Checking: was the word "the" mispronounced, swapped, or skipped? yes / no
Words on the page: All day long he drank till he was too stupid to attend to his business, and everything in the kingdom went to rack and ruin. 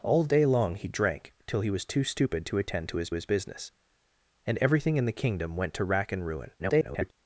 no